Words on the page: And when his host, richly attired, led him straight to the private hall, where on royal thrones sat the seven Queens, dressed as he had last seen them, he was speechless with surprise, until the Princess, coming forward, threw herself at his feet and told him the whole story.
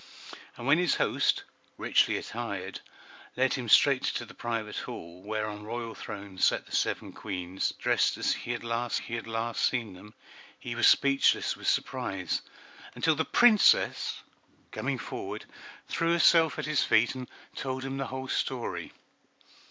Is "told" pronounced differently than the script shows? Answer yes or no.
no